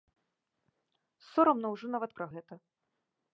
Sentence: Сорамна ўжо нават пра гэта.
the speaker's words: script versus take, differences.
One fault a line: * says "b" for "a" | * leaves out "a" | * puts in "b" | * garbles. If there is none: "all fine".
all fine